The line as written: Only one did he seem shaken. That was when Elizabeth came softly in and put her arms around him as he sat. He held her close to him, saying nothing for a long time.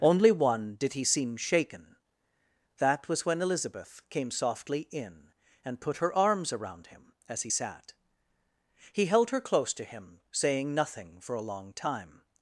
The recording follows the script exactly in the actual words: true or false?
true